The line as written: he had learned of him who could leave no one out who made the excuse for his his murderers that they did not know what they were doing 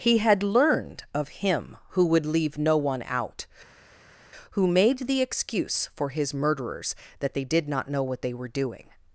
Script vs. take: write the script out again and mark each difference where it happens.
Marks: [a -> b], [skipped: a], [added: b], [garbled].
he had learned of him who [could -> would] leave no one out who made the excuse for his [skipped: his] murderers that they did not know what they were doing